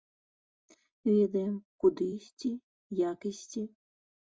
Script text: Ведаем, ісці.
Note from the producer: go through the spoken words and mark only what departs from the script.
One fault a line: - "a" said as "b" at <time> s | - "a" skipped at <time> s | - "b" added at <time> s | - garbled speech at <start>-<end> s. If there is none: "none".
- "куды ісці як" added at 1.9 s